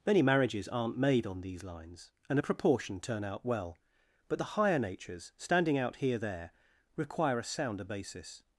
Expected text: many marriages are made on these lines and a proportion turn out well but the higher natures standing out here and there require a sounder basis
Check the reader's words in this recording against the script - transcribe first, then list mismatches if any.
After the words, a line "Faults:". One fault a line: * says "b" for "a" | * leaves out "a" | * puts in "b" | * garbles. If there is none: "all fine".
many marriages aren't made on these lines and a proportion turn out well but the higher natures standing out here there require a sounder basis
Faults:
* says "aren't" for "are"
* leaves out "and"